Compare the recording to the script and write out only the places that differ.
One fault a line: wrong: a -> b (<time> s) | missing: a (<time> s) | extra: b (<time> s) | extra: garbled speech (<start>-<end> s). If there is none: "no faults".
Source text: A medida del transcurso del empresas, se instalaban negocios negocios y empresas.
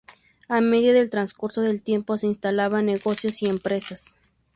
wrong: empresas -> tiempo (1.8 s)
missing: negocios (3.4 s)